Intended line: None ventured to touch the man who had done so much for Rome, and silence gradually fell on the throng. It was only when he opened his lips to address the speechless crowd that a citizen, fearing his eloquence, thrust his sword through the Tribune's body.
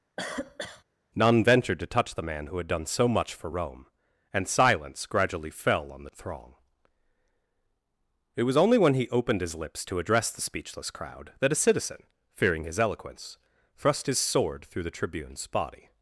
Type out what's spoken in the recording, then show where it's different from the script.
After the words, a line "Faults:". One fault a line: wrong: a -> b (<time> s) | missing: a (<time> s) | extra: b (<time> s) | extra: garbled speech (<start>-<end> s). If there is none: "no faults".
None ventured to touch the man who had done so much for Rome, and silence gradually fell on the throng. It was only when he opened his lips to address the speechless crowd that a citizen, fearing his eloquence, thrust his sword through the Tribune's body.
Faults:
no faults